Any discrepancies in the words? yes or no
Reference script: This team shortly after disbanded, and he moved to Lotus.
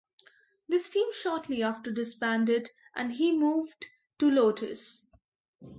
no